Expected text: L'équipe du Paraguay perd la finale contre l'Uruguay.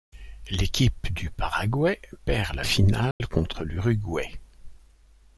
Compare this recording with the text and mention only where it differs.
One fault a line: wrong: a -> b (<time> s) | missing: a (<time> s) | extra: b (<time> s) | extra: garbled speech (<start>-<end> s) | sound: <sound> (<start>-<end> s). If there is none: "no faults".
sound: dropout (3.1-3.2 s)